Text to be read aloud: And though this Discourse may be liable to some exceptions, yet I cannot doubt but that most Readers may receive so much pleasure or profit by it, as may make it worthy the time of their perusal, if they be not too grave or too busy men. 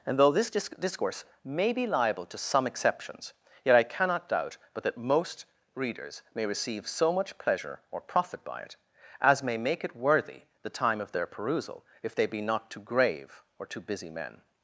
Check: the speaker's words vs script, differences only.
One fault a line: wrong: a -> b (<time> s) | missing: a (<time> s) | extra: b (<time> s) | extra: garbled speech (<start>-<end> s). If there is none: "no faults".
extra: disc (0.5 s)